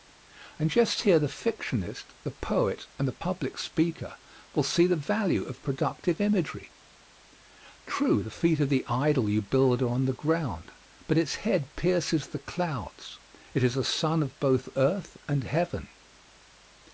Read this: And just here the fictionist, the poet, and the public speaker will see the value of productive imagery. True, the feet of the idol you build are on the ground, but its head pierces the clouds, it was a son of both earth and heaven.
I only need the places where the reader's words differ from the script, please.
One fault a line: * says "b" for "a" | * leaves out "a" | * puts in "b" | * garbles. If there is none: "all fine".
* says "is" for "was"